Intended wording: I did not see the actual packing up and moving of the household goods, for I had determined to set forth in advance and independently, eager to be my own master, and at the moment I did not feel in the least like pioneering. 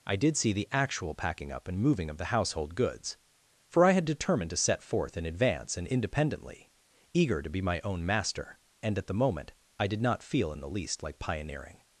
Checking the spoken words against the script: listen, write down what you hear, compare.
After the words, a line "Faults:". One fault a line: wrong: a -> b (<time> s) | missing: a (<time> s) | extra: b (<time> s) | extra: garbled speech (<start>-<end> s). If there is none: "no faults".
I did see the actual packing up and moving of the household goods, for I had determined to set forth in advance and independently, eager to be my own master, and at the moment I did not feel in the least like pioneering.
Faults:
missing: not (0.3 s)